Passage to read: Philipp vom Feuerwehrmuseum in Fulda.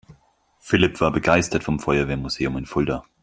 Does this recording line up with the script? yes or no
no